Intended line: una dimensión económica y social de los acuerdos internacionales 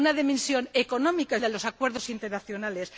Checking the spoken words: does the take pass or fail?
fail